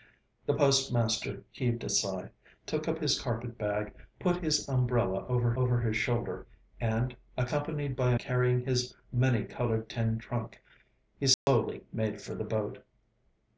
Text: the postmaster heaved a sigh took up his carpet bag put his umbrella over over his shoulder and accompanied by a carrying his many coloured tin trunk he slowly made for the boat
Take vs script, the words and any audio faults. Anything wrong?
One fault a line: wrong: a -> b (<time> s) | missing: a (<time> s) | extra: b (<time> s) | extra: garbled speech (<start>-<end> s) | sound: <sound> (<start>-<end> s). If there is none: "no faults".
sound: dropout (11.3-11.5 s)